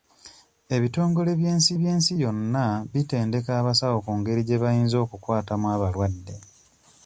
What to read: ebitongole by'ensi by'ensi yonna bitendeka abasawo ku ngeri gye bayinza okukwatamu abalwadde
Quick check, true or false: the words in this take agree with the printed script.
true